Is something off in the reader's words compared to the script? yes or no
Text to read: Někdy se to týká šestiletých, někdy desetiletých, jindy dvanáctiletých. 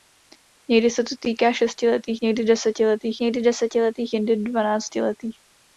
yes